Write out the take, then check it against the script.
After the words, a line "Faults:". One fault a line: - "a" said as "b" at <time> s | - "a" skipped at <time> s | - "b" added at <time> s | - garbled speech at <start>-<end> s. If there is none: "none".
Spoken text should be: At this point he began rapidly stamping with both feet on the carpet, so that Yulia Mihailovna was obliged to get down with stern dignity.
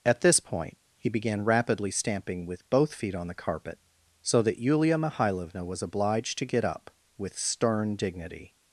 At this point he began rapidly stamping with both feet on the carpet, so that Yulia Mihailovna was obliged to get up with stern dignity.
Faults:
- "down" said as "up" at 6.6 s